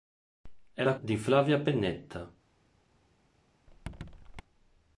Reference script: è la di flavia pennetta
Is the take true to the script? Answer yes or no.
yes